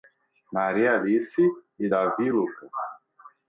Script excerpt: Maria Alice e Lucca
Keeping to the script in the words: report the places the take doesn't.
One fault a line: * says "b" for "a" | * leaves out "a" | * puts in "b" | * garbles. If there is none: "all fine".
* puts in "Davi"